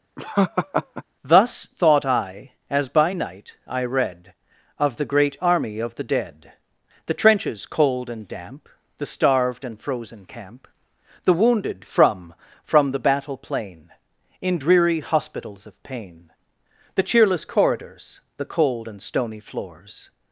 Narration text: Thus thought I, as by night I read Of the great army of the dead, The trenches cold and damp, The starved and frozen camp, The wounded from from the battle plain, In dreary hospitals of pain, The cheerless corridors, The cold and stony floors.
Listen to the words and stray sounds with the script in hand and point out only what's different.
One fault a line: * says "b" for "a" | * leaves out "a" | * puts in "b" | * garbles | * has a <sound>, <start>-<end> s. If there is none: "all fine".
* has a laugh, 0.2-1.0 s